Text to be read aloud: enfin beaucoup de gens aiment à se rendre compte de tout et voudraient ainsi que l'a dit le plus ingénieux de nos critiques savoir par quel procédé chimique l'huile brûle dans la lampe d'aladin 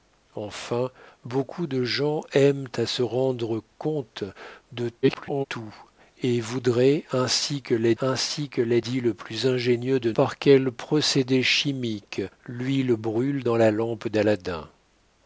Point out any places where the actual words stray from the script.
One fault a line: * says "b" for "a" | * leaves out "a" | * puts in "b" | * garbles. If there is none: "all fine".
* garbles
* puts in "ainsi que l'a"
* leaves out "nos critiques savoir"